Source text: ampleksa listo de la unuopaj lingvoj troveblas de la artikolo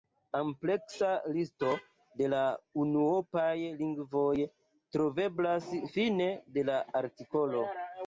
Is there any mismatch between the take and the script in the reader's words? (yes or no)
yes